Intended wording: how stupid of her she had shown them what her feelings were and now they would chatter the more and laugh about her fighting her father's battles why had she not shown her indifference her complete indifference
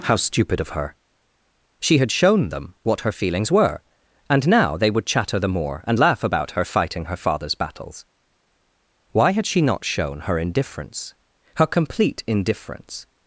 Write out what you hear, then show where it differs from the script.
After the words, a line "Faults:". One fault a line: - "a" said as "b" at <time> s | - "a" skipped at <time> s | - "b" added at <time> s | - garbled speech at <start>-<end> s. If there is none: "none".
how stupid of her she had shown them what her feelings were and now they would chatter the more and laugh about her fighting her father's battles why had she not shown her indifference her complete indifference
Faults:
none